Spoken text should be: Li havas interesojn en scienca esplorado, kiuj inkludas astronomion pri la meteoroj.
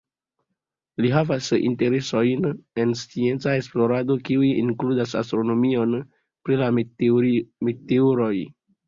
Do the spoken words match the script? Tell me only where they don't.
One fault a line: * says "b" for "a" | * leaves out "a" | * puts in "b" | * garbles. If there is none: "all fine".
all fine